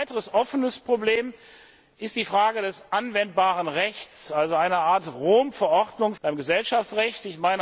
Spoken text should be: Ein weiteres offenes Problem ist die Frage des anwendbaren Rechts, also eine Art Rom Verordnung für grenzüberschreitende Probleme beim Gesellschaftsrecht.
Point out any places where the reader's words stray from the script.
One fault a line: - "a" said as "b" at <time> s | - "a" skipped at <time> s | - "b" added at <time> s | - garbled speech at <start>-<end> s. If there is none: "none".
- "für grenzüberschreitende Probleme" skipped at 6.2 s